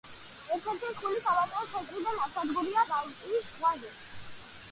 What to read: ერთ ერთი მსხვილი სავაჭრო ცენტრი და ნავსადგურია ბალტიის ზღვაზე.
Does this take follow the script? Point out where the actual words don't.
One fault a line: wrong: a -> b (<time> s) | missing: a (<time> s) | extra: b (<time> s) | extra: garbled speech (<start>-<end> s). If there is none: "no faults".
no faults